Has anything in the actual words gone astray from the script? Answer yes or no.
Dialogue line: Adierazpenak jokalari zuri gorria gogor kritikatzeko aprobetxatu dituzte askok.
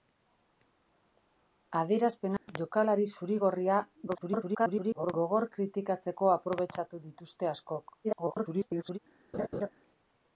yes